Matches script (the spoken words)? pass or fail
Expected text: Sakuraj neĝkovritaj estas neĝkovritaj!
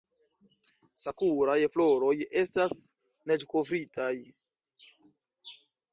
fail